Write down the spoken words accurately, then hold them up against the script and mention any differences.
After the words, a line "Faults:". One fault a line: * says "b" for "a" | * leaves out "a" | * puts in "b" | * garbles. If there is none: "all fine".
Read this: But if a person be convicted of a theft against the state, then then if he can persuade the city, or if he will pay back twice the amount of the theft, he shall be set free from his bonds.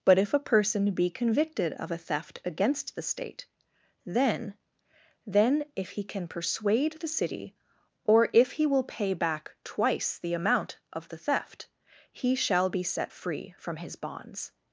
But if a person be convicted of a theft against the state, then then if he can persuade the city, or if he will pay back twice the amount of the theft, he shall be set free from his bonds.
Faults:
all fine